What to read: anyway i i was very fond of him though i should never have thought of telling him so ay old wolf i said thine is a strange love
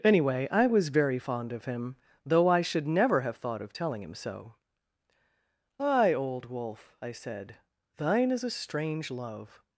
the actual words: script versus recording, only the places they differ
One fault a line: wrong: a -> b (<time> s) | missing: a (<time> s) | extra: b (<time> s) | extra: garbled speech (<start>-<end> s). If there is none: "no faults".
missing: i (0.7 s)